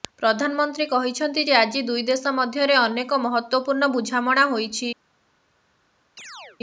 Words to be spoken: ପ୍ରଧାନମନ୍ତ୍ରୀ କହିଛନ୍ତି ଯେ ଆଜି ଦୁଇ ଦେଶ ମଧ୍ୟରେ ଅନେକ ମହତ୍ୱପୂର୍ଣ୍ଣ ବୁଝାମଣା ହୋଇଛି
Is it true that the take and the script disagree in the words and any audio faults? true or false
true